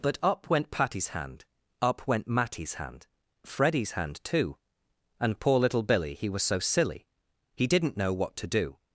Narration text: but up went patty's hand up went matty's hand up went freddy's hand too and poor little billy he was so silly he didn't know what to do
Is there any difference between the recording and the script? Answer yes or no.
yes